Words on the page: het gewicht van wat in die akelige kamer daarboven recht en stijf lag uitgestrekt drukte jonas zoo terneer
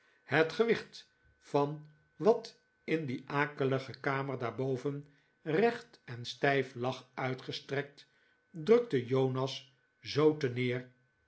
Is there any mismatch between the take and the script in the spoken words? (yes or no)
no